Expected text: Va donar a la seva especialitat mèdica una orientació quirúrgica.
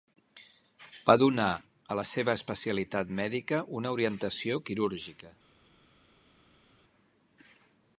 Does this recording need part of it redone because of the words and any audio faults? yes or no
no